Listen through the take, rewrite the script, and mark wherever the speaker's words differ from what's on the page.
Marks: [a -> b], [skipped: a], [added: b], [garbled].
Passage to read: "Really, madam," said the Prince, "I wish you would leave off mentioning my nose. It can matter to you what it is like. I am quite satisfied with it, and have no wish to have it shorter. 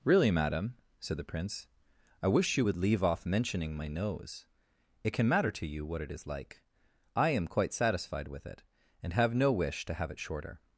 "Really, madam," said the Prince, "I wish you would leave off mentioning my nose. It can matter to you what it is like. I am quite satisfied with it, and have no wish to have it shorter.